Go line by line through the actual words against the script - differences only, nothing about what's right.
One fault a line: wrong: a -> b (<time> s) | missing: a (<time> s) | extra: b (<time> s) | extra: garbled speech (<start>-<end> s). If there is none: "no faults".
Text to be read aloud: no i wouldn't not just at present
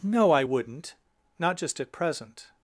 no faults